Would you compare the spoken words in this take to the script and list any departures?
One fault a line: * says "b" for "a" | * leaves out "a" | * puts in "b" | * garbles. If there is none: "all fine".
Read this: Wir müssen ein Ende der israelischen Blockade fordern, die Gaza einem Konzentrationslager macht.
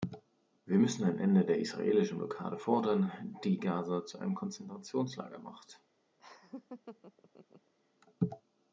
* puts in "zu"